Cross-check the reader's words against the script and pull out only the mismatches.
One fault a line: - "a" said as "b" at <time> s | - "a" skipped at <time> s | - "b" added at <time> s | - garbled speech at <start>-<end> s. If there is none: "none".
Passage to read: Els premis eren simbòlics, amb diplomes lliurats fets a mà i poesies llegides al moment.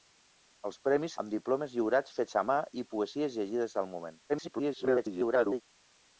- "eren simbòlics" skipped at 1.2 s
- garbled speech at 4.3-5.6 s